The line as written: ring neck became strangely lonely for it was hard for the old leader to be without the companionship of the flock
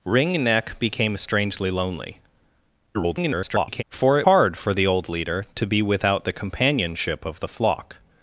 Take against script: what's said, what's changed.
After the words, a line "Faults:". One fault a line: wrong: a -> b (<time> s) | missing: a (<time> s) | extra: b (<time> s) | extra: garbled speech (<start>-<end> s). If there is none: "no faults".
ring neck became strangely lonely [garbled] for it hard for the old leader to be without the companionship of the flock
Faults:
extra: garbled speech (2.9-3.8 s)
missing: was (4.3 s)